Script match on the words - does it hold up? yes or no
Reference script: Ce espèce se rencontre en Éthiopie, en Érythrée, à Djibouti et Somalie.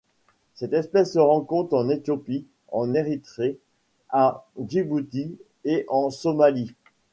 no